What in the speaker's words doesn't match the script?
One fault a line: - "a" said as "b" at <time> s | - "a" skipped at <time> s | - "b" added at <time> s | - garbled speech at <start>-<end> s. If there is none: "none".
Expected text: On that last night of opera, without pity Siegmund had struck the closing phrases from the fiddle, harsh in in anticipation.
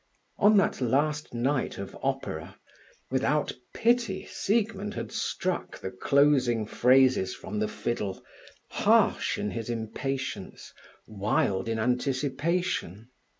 - "his impatience wild" added at 9.5 s